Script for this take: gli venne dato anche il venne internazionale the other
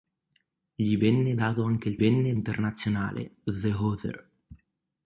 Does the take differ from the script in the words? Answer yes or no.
no